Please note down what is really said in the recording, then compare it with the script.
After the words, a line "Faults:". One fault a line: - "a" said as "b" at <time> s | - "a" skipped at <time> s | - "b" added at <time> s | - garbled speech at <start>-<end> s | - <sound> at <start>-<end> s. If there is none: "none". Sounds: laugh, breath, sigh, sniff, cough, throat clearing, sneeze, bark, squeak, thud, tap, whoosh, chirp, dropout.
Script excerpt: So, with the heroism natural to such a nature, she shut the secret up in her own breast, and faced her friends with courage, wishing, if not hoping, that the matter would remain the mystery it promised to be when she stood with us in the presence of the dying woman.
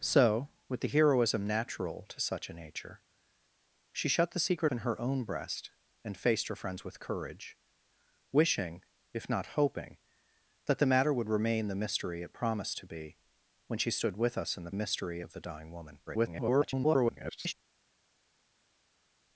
So, with the heroism natural to such a nature, she shut the secret in her own breast, and faced her friends with courage, wishing, if not hoping, that the matter would remain the mystery it promised to be when she stood with us in the mystery of the dying woman. [garbled]
Faults:
- "up" skipped at 4.7 s
- "presence" said as "mystery" at 14.7 s
- garbled speech at 16.1-17.5 s